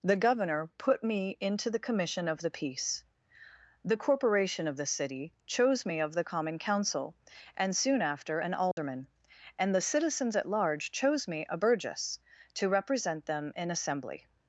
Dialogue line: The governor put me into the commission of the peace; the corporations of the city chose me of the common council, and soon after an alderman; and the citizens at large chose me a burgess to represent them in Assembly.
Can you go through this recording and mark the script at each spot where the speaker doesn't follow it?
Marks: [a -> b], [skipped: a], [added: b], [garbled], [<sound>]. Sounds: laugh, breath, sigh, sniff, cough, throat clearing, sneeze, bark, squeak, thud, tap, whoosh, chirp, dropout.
The governor put me into the commission of the peace; the [corporations -> corporation] of the city chose me of the common council, and soon after an alderman; [dropout] and the citizens at large chose me a burgess to represent them in Assembly.